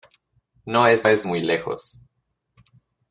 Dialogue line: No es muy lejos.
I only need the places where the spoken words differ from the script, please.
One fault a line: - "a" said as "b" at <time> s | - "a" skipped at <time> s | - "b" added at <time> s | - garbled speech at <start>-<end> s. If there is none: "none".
- "es" added at 1.1 s